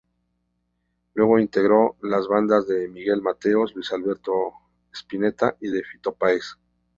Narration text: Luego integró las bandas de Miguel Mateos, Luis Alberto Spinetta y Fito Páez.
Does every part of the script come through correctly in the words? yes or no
no